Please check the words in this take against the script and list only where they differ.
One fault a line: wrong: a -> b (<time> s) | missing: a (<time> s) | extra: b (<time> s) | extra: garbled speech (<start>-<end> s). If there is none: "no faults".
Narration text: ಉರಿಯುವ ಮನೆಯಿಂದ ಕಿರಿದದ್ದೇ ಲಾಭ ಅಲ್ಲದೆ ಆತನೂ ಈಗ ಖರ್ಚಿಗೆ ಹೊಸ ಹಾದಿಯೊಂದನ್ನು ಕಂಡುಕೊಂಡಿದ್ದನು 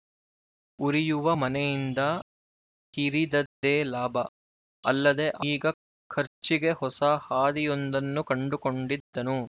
missing: ಆತನೂ (5.3 s)